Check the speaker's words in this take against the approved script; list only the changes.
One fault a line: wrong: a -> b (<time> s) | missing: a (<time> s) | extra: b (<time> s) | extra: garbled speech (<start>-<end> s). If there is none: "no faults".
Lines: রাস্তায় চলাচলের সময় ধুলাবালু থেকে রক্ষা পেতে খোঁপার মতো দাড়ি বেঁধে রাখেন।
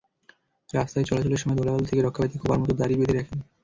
no faults